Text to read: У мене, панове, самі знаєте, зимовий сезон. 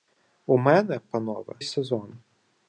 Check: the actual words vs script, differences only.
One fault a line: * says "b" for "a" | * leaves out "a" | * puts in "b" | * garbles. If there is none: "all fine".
* leaves out "самі знаєте зимовий"